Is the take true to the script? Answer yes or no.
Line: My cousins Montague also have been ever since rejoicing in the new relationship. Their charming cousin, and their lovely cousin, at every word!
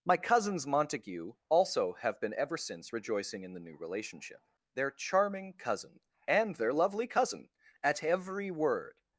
yes